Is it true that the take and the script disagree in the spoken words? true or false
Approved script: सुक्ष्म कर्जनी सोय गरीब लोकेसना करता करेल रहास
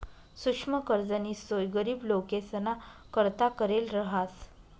false